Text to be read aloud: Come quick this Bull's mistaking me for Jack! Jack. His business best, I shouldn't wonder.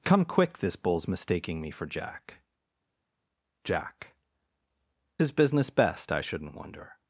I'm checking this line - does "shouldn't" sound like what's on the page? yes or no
yes